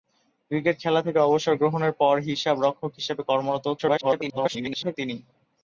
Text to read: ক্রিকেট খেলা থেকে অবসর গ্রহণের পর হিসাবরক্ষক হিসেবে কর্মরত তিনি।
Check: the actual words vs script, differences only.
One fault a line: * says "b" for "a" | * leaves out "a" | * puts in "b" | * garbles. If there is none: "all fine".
* garbles